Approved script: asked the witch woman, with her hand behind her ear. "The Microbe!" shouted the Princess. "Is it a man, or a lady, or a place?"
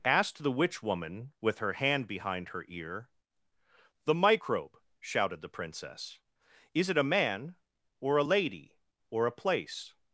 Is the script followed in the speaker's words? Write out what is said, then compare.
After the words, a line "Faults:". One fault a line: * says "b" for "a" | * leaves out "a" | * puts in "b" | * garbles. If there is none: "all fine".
asked the witch woman, with her hand behind her ear. "The Microbe!" shouted the Princess. "Is it a man, or a lady, or a place?"
Faults:
all fine